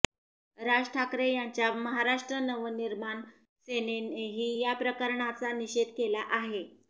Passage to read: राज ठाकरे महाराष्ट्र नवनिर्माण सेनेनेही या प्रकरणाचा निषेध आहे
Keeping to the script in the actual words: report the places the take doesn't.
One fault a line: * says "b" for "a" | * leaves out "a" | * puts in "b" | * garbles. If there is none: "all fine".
* puts in "यांच्या"
* puts in "केला"